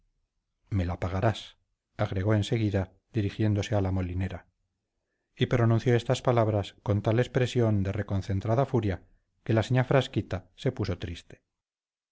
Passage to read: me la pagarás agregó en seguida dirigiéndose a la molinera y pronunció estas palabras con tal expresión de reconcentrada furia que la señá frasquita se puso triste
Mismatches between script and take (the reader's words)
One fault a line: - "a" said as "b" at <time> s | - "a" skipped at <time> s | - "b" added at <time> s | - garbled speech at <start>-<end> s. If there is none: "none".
none